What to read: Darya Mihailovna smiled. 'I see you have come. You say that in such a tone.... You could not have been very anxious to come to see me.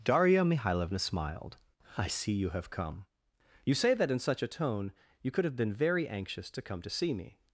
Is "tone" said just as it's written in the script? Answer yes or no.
yes